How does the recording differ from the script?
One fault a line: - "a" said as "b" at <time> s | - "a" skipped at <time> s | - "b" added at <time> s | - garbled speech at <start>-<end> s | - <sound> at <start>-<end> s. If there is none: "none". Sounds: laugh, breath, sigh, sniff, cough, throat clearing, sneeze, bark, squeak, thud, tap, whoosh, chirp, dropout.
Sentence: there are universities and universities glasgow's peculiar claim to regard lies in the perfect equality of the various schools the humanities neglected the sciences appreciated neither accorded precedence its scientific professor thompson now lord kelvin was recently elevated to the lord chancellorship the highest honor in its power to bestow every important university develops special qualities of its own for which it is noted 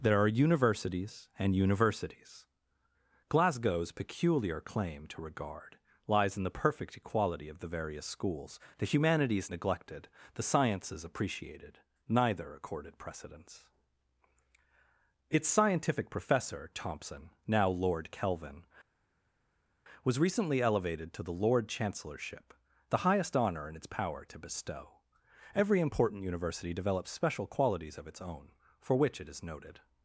none